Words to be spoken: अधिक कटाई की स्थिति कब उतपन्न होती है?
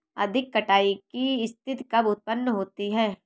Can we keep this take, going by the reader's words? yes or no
yes